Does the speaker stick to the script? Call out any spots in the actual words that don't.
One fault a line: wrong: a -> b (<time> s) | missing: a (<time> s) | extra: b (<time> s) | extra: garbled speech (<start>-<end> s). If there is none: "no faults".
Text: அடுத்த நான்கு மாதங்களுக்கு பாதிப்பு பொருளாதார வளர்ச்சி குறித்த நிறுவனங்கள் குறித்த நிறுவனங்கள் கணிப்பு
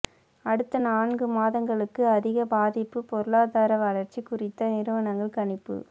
extra: அதிக (2.1 s)
missing: குறித்த நிறுவனங்கள் (5.4 s)